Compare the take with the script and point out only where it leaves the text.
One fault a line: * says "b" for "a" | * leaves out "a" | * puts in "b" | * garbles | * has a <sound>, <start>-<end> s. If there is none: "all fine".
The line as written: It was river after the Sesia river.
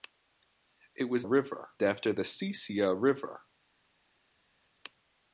all fine